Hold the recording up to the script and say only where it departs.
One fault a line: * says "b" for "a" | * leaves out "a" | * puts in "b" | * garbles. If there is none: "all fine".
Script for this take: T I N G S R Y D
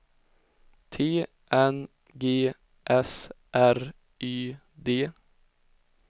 * leaves out "I"